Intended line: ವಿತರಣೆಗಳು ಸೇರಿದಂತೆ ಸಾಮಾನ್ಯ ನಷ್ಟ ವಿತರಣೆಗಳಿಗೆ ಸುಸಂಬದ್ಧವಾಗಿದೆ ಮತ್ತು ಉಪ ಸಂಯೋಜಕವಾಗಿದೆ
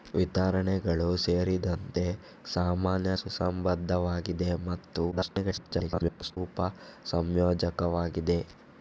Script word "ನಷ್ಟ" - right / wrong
wrong